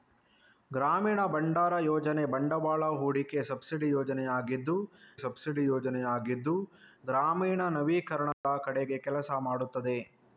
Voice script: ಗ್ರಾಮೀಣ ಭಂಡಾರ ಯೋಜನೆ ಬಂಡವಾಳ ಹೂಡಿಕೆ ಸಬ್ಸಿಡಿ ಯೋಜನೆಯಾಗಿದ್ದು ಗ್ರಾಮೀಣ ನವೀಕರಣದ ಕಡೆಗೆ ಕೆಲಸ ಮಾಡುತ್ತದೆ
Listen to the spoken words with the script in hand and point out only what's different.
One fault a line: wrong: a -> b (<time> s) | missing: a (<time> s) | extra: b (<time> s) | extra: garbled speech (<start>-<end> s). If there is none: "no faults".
extra: ಸಬ್ಸಿಡಿ ಯೋಜನೆಯಾಗಿದ್ದು (5.2 s)